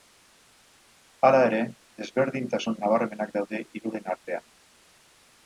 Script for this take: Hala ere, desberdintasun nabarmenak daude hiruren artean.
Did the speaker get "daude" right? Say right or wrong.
right